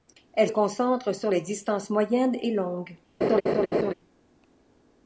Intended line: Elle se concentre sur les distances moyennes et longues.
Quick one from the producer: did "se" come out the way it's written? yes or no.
no